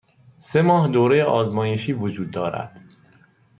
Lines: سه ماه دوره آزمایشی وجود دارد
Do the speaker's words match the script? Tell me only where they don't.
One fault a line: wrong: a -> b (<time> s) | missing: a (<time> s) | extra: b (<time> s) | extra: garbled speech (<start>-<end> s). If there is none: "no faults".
no faults